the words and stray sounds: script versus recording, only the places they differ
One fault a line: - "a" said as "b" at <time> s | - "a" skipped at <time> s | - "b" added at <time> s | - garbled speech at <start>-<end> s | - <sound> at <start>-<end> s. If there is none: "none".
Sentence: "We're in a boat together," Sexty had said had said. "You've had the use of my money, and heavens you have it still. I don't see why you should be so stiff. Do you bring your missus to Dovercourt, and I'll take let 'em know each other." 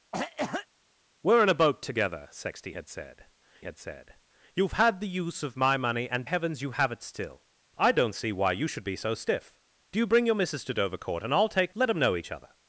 - cough at 0.1-0.7 s